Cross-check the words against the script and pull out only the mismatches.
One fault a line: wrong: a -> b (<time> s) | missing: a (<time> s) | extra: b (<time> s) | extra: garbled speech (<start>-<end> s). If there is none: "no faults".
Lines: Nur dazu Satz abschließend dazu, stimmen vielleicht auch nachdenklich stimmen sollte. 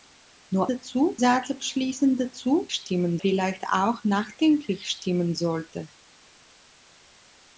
no faults